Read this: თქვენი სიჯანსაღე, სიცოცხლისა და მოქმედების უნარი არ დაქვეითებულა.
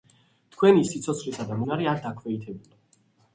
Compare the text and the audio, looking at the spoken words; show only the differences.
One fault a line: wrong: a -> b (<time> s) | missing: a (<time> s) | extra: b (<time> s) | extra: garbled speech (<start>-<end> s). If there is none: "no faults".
missing: სიჯანსაღე (0.8 s)
missing: მოქმედების (1.6 s)